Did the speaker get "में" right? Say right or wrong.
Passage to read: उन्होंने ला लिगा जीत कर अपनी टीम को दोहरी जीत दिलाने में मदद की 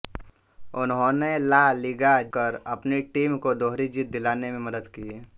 right